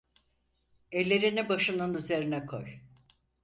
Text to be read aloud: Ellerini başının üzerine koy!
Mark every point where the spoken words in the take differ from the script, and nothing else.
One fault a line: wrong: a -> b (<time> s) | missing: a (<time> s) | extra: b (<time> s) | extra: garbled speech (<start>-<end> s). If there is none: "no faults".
no faults